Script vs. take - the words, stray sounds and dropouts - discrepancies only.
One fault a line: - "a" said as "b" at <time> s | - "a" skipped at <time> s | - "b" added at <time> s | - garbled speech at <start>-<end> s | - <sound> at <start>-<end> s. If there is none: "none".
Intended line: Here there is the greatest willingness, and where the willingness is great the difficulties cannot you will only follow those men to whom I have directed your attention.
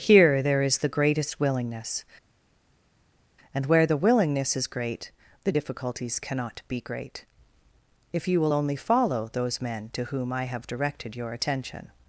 - "be great if" added at 6.7 s